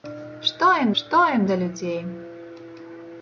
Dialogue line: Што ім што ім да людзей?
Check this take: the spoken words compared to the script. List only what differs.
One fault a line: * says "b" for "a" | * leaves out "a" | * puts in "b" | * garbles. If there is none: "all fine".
all fine